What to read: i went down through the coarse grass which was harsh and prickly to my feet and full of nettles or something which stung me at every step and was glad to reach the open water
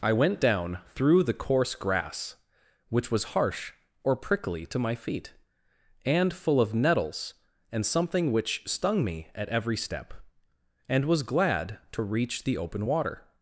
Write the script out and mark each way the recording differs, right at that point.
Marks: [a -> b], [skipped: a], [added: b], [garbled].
i went down through the coarse grass which was harsh [and -> or] prickly to my feet and full of nettles [or -> and] something which stung me at every step and was glad to reach the open water